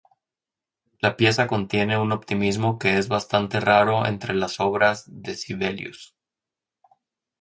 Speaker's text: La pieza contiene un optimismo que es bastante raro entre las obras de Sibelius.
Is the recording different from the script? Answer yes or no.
no